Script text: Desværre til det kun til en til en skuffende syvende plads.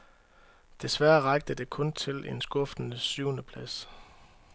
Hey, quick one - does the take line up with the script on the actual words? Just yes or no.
no